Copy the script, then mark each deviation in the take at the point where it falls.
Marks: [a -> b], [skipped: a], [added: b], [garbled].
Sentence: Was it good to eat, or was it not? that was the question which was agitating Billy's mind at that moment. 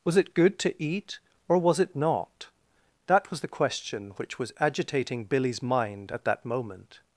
Was it good to eat, or was it not? that was the question which was agitating Billy's mind at that moment.